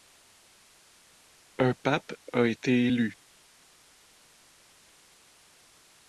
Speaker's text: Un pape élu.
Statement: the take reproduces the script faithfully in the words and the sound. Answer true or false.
false